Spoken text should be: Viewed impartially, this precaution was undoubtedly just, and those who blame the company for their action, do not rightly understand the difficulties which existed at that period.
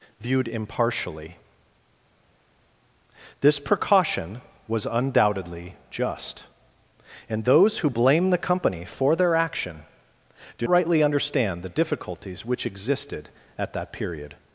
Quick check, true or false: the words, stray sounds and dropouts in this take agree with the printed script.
false